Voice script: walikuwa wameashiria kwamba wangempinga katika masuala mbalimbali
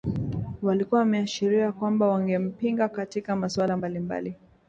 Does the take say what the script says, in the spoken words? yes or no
yes